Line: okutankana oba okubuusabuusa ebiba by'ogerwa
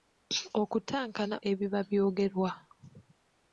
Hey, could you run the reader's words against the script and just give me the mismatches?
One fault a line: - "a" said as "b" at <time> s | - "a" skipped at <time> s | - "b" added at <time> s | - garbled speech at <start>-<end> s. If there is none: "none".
- "oba okubuusabuusa" skipped at 1.4 s